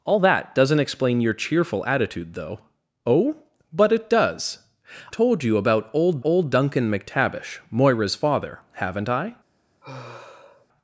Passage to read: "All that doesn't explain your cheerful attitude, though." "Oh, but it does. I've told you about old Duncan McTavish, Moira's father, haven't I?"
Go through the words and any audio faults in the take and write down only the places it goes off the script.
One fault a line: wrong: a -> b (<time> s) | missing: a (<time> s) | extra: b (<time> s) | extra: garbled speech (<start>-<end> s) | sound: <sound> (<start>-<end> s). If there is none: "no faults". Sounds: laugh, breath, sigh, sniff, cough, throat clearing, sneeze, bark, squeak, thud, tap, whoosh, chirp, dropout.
missing: I've (4.7 s)
extra: old (6.2 s)
sound: sigh (9.8-10.7 s)